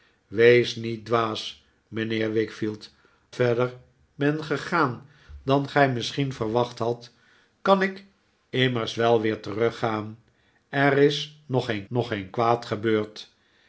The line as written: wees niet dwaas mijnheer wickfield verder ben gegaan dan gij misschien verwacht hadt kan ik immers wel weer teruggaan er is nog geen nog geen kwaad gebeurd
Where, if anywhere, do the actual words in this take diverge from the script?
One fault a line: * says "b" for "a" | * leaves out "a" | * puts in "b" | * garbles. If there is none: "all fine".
all fine